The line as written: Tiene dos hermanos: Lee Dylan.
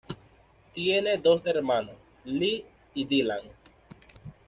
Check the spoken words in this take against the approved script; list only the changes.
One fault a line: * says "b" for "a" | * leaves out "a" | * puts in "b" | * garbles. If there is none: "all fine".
* puts in "y"